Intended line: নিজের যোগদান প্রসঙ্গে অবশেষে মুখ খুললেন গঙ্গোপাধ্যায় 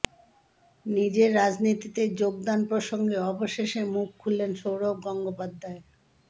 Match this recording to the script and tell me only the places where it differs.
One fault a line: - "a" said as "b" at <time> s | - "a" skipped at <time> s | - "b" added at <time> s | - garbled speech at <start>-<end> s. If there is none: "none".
- "রাজনীতিতে" added at 1.4 s
- "সৌরভ" added at 4.6 s